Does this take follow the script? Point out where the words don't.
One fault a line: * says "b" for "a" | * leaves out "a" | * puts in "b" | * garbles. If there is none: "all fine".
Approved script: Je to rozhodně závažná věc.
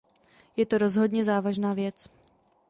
all fine